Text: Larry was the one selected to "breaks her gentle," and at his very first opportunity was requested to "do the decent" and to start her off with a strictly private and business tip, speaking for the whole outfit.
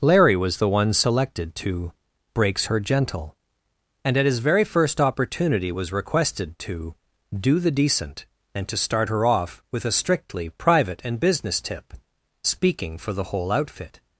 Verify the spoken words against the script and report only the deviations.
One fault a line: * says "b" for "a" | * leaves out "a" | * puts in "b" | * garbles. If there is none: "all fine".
all fine